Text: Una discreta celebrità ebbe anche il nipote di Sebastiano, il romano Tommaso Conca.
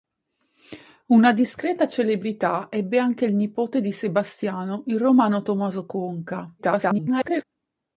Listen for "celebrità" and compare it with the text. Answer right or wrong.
right